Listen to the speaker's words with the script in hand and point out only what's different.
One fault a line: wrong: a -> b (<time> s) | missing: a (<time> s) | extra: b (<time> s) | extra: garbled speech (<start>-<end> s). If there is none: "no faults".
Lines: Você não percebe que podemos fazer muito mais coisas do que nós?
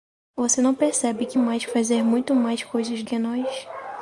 wrong: podemos -> mais (1.4 s)
missing: do (3.0 s)